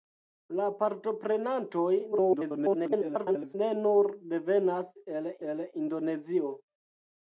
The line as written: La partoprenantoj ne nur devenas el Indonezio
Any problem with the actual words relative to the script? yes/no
yes